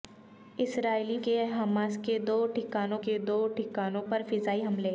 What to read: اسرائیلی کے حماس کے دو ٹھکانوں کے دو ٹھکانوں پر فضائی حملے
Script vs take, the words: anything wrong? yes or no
no